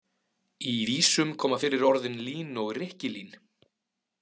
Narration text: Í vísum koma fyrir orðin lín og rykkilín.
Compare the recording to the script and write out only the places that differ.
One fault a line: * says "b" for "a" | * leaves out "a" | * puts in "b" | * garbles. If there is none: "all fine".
all fine